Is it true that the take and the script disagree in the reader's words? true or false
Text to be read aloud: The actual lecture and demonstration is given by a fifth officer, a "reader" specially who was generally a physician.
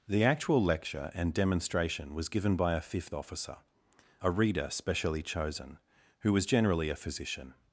true